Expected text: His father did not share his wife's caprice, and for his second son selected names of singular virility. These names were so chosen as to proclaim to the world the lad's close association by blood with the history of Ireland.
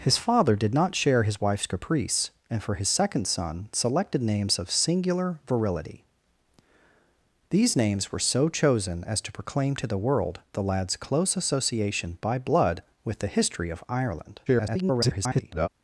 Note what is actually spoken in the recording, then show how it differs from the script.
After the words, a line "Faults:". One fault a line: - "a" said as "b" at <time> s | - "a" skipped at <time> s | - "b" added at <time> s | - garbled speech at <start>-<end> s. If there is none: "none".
His father did not share his wife's caprice, and for his second son selected names of singular virility. These names were so chosen as to proclaim to the world the lad's close association by blood with the history of Ireland. [garbled]
Faults:
- garbled speech at 14.5-15.7 s